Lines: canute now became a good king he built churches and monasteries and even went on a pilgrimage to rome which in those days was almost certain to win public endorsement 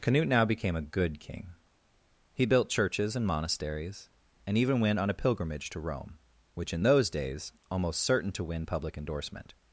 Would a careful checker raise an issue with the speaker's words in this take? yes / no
yes